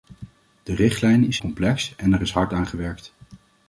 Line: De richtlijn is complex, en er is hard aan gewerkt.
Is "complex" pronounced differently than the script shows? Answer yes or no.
no